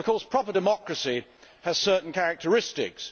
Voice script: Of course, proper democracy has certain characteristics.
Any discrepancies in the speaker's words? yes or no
no